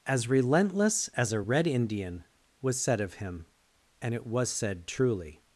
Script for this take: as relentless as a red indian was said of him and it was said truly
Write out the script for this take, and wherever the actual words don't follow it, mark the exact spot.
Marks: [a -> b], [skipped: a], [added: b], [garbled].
as relentless as a red indian was said of him and it was said truly